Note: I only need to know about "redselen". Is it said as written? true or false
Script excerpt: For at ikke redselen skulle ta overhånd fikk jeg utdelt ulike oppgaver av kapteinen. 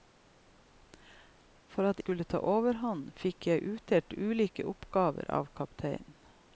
false